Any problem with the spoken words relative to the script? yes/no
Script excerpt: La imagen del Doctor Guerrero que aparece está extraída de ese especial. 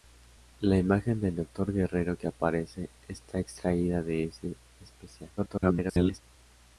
yes